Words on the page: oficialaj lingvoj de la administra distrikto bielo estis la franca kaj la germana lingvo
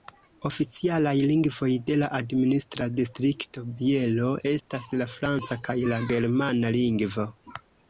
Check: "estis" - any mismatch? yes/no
yes